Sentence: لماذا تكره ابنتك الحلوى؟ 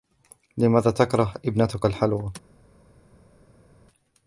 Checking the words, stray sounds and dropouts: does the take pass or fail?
pass